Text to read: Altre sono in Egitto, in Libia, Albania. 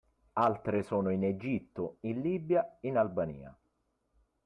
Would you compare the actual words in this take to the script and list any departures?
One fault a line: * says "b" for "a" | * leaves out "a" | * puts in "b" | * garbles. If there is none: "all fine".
* puts in "in"